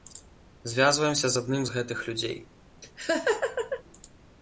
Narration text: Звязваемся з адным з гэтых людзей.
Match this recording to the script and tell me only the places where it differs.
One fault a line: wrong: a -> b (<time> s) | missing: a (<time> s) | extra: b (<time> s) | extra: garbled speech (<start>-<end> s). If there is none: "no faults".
no faults